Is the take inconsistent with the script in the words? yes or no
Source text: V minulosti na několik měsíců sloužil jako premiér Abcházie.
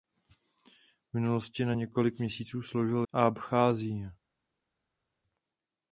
yes